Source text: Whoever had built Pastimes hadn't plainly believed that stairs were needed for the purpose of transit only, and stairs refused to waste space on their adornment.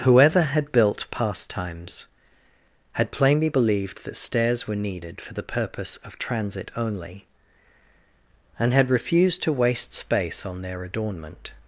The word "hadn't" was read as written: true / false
false